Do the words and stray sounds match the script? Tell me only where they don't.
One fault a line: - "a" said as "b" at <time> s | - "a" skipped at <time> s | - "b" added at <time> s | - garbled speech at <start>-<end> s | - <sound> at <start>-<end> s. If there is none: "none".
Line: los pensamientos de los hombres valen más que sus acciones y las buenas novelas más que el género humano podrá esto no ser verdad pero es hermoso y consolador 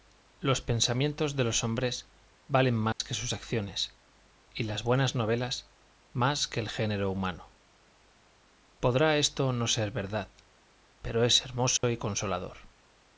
- dropout at 2.9-3.0 s
- dropout at 11.8-11.8 s